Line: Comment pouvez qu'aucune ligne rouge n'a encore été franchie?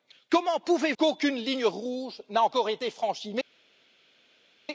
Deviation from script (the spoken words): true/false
false